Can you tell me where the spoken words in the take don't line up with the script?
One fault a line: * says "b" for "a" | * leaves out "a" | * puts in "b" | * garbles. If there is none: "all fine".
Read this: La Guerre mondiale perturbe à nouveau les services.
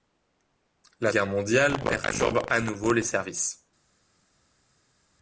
all fine